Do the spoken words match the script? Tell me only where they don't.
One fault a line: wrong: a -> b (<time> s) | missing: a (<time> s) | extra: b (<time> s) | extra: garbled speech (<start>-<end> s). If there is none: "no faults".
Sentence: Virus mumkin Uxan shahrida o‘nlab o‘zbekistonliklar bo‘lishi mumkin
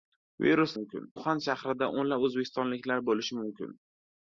no faults